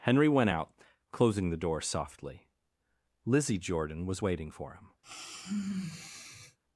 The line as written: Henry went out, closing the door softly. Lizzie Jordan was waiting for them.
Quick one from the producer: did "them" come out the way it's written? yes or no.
no